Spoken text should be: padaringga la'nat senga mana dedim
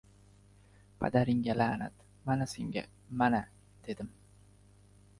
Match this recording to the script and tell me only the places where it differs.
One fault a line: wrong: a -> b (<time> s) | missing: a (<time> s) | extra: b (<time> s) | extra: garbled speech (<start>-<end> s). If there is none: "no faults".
extra: mana (2.2 s)